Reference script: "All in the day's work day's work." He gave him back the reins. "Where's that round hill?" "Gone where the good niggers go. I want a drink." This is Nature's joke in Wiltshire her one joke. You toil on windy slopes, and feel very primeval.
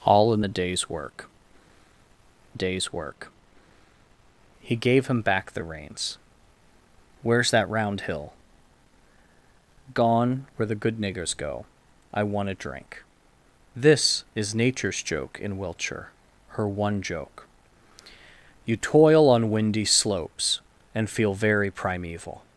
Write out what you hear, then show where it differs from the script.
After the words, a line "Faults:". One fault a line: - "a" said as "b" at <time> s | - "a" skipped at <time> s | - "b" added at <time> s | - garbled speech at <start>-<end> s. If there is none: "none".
"All in the day's work day's work." He gave him back the reins. "Where's that round hill?" "Gone where the good niggers go. I want a drink." This is Nature's joke in Wiltshire her one joke. You toil on windy slopes, and feel very primeval.
Faults:
none